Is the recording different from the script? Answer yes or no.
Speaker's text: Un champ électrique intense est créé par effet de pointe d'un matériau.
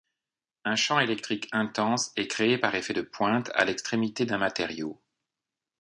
yes